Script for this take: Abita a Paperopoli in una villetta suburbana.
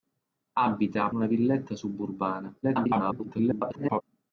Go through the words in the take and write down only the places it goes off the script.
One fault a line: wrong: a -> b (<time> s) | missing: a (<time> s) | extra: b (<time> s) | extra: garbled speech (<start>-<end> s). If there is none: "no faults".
missing: Paperopoli in (1.1 s)
extra: garbled speech (2.6-4.0 s)